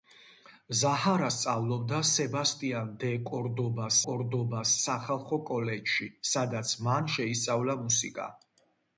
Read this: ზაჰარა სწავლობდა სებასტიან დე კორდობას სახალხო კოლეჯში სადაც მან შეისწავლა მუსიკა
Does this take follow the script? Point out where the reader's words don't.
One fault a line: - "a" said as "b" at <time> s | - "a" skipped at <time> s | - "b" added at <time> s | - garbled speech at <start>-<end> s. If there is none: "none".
- "კორდობას" added at 4.1 s